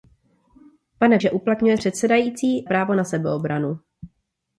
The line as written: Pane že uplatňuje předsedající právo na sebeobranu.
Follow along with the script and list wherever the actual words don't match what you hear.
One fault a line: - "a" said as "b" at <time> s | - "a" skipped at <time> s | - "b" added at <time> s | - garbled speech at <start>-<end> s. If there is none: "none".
none